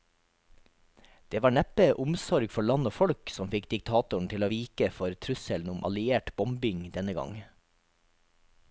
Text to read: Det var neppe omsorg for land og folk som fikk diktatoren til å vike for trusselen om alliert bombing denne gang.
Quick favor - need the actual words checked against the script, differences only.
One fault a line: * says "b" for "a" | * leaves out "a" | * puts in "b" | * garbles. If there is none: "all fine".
all fine